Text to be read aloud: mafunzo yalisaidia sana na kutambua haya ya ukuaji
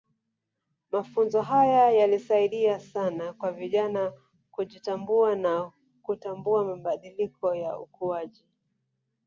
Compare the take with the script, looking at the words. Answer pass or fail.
fail